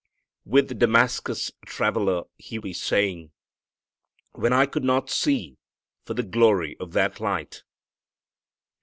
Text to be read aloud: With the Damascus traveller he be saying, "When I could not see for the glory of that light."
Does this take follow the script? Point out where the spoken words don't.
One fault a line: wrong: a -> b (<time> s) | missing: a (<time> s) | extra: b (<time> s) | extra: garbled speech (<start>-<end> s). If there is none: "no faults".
no faults